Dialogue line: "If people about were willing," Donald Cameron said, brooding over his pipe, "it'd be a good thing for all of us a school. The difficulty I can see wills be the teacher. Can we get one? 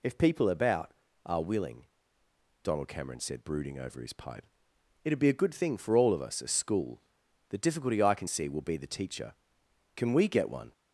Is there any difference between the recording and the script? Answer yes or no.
yes